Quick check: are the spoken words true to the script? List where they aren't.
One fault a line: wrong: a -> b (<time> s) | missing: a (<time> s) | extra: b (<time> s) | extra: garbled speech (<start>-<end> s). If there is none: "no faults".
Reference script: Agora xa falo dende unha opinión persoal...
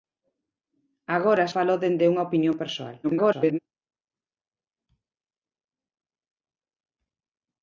missing: xa (1.4 s)
extra: garbled speech (3.0-3.6 s)